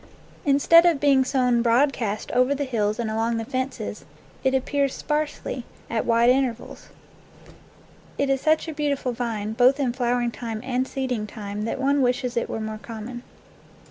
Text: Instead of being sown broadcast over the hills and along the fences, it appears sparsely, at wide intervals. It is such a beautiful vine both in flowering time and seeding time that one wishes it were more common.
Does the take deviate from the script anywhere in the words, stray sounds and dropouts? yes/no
no